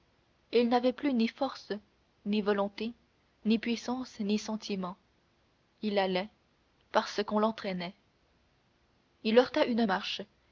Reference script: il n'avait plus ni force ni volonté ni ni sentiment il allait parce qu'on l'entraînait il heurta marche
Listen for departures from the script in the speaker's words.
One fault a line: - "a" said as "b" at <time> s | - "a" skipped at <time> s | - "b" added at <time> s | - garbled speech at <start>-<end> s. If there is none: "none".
- "puissance" added at 3.6 s
- "une" added at 9.7 s